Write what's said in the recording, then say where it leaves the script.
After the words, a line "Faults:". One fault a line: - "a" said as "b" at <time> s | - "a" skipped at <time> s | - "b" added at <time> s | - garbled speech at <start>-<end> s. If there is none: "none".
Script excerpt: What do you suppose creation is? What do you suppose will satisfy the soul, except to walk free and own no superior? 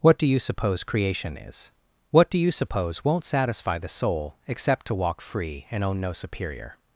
What do you suppose creation is? What do you suppose won't satisfy the soul, except to walk free and own no superior?
Faults:
- "will" said as "won't" at 3.0 s